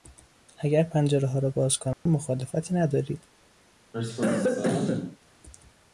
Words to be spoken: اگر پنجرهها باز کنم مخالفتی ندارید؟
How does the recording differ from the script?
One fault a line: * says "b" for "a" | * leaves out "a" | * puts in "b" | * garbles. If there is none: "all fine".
* puts in "را"